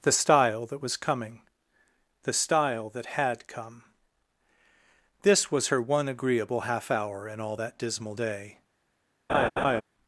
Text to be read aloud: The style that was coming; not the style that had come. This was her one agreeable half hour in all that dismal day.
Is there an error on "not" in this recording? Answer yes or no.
yes